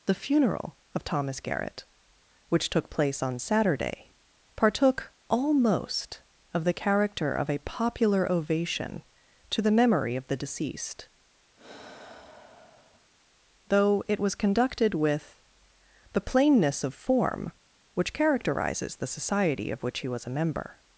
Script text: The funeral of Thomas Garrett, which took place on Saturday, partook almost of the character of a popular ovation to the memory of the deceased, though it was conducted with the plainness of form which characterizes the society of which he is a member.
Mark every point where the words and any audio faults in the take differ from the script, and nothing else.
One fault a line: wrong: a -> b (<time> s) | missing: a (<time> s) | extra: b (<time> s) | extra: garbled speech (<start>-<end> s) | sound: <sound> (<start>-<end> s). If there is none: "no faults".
sound: sigh (11.6-13.1 s)
wrong: is -> was (20.1 s)